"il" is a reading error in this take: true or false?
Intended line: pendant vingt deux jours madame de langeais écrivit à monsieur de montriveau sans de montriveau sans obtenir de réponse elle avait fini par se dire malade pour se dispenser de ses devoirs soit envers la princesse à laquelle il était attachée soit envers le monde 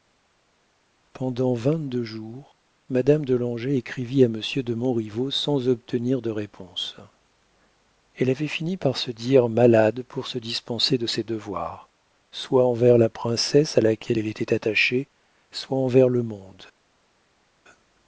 true